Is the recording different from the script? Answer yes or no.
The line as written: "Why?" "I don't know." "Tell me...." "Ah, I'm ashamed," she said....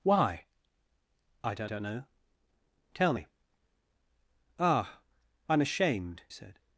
yes